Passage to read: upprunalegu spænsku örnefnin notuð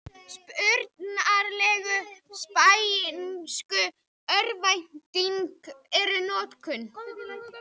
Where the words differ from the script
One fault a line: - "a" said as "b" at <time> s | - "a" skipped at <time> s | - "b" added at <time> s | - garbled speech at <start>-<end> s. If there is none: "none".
- "eru" added at 6.0 s